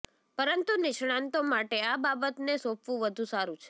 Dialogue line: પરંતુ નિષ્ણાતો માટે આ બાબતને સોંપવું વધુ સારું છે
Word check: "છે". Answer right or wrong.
right